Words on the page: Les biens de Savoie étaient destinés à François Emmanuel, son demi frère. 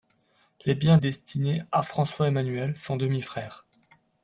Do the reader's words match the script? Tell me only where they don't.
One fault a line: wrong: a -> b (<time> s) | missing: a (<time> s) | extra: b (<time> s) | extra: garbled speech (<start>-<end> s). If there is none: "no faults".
missing: de Savoie étaient (1.0 s)